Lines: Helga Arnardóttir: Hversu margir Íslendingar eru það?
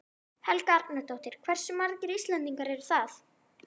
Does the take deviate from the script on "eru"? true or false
false